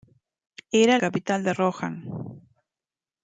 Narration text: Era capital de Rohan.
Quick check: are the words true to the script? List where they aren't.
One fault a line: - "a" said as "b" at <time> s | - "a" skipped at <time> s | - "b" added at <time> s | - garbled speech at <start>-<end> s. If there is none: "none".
none